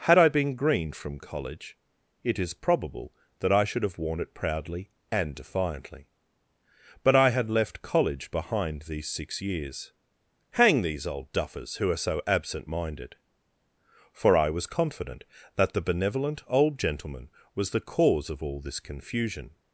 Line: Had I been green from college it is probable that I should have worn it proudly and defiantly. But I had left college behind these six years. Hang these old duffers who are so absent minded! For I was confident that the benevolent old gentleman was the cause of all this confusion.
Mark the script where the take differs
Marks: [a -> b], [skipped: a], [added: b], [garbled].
Had I been green from college it is probable that I should have worn it proudly and defiantly. But I had left college behind these six years. Hang these old duffers who are so absent minded! For I was confident that the benevolent old gentleman was the cause of all this confusion.